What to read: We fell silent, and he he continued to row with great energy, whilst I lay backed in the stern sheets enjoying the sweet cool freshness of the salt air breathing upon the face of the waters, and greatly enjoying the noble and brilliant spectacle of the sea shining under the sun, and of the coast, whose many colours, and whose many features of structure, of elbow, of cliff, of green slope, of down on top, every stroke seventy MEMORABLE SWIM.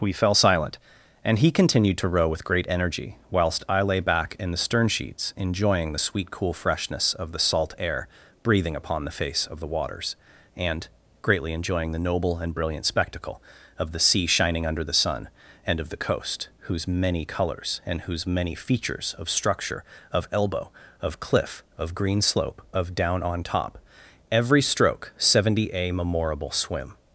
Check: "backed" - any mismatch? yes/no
yes